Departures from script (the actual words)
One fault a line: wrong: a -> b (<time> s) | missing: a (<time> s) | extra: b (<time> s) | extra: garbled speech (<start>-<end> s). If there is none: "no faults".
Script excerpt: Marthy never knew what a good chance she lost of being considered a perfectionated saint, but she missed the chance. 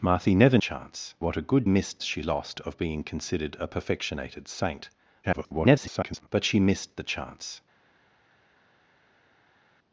wrong: knew -> chance (0.6 s)
wrong: chance -> missed (1.7 s)
extra: garbled speech (5.2-6.3 s)